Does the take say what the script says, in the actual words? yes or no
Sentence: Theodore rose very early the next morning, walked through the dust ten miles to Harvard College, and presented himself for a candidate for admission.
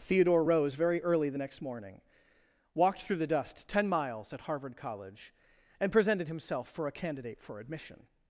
no